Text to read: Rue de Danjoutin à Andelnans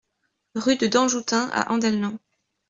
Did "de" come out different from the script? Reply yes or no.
no